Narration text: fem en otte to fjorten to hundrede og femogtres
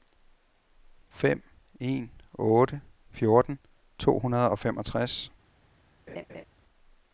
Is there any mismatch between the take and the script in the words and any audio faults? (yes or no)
yes